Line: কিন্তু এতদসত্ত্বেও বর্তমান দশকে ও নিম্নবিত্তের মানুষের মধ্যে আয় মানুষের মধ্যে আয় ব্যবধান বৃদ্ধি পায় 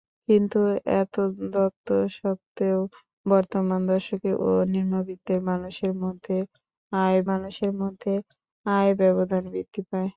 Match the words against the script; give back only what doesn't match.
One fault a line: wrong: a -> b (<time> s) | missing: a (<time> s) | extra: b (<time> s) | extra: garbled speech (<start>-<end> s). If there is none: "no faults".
no faults